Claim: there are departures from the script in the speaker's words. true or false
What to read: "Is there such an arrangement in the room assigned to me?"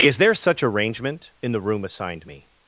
true